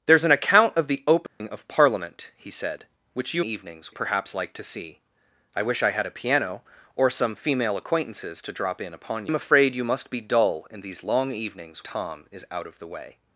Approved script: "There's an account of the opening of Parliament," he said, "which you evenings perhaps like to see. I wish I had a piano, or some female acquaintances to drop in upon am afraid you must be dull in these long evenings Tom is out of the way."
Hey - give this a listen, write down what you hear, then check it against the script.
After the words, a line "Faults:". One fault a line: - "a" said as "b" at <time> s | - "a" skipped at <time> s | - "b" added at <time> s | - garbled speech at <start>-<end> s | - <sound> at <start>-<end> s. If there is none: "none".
"There's an account of the opening of Parliament," he said, "which you evenings perhaps like to see. I wish I had a piano, or some female acquaintances to drop in upon am afraid you must be dull in these long evenings Tom is out of the way."
Faults:
- dropout at 1.3-1.4 s